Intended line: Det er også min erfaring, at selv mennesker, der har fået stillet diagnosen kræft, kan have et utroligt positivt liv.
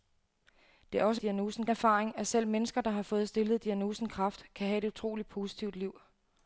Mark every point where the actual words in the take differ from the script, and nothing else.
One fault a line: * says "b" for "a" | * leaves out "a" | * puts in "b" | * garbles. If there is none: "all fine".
* says "diagnosen" for "min"